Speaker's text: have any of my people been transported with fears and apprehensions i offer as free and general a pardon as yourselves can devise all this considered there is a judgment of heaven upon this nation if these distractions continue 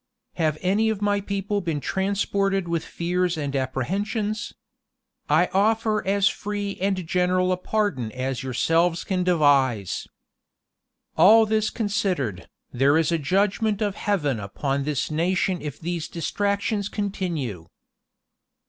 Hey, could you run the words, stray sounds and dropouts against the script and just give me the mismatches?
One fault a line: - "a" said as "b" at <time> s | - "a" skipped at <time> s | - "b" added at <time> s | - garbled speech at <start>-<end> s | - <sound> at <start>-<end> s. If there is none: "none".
none